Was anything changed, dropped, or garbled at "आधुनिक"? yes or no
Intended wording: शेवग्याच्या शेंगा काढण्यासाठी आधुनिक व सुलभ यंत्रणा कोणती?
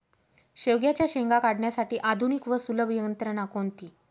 no